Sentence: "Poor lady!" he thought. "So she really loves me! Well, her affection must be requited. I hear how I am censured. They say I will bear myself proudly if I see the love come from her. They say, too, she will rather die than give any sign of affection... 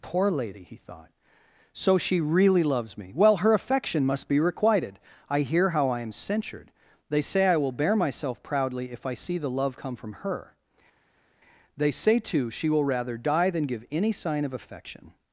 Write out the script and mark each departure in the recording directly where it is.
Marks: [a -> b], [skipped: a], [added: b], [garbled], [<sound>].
"Poor lady!" he thought. "So she really loves me! Well, her affection must be requited. I hear how I am censured. They say I will bear myself proudly if I see the love come from her. They say, too, she will rather die than give any sign of affection...